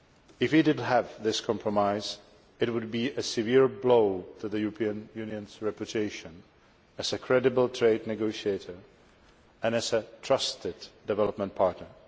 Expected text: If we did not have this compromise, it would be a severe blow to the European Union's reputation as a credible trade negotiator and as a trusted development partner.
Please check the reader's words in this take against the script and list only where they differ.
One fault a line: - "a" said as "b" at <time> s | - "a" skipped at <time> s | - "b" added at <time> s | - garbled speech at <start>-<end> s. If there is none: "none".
- "not" skipped at 0.8 s